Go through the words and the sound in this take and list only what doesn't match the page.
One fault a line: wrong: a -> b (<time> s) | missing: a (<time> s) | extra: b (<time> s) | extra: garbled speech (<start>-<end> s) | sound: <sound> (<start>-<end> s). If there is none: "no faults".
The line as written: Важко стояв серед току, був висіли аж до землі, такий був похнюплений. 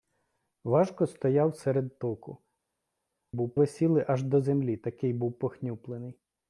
no faults